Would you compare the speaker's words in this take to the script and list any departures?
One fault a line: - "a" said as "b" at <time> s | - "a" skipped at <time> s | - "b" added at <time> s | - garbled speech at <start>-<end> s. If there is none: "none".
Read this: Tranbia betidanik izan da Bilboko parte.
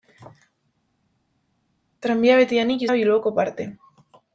- "izan" skipped at 2.8 s